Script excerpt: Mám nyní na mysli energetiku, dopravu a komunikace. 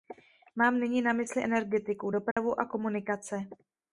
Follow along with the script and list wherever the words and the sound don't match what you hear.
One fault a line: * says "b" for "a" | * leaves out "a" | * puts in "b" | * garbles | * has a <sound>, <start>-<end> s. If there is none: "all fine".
* has a dropout, 2.3-2.4 s